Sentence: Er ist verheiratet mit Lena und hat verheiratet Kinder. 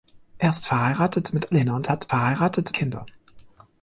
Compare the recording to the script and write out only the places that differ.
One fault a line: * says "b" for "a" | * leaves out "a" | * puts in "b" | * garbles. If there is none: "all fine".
all fine